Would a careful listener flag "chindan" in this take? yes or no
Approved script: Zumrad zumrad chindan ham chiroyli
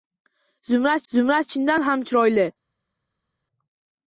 no